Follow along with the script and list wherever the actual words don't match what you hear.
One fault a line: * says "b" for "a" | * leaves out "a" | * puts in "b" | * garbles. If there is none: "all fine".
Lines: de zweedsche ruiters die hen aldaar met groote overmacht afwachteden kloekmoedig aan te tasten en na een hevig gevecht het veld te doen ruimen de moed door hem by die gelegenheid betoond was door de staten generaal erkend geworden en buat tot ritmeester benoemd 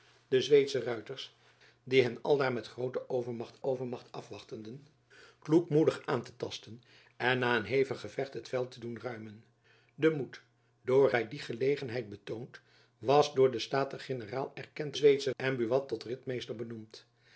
* puts in "overmacht"
* leaves out "hem"
* says "zweedsche" for "geworden"